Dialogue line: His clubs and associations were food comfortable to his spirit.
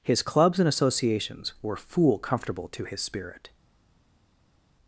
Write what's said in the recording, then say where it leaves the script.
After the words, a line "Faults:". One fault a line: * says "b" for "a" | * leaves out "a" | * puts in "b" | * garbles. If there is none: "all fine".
His clubs and associations were fool comfortable to his spirit.
Faults:
* says "fool" for "food"